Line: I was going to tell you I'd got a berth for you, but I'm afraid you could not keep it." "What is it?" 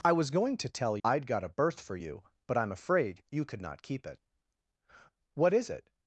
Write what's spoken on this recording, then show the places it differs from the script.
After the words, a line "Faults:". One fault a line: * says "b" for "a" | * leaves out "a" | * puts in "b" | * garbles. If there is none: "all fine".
I was going to tell I'd got a berth for you, but I'm afraid you could not keep it." "What is it?"
Faults:
* leaves out "you"